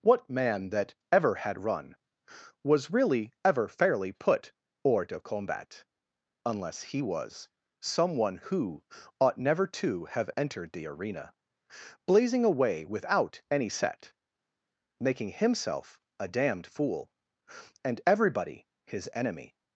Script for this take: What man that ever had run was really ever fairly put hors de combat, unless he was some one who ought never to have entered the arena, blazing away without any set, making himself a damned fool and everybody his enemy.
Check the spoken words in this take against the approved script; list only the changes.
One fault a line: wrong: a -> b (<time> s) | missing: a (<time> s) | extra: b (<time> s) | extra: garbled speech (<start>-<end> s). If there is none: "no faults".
no faults